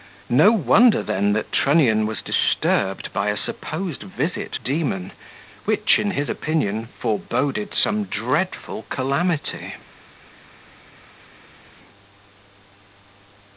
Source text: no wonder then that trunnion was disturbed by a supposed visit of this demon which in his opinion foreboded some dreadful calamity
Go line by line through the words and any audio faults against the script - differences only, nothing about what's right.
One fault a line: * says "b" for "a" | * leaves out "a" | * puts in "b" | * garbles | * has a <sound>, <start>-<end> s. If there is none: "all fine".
* leaves out "of this"